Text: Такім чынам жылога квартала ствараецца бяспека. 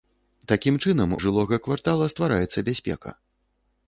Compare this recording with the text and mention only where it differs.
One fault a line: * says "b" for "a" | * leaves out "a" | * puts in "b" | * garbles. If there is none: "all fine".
all fine